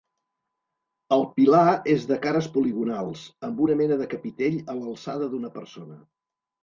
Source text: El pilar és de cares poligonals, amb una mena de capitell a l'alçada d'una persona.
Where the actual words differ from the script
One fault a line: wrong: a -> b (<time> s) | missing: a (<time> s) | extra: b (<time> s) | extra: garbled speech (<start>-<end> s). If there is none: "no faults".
no faults